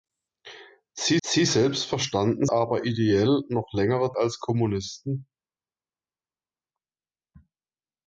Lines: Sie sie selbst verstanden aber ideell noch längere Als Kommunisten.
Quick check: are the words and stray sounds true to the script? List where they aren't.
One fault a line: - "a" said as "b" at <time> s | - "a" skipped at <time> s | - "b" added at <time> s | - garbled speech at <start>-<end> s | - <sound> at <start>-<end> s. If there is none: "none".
none